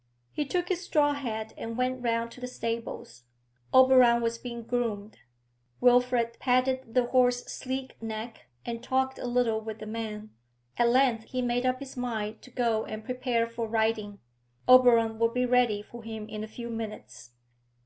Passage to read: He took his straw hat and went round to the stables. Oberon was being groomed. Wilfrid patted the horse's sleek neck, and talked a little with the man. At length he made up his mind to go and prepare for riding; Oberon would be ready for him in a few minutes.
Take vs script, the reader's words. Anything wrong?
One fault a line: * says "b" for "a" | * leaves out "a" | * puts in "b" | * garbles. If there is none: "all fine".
all fine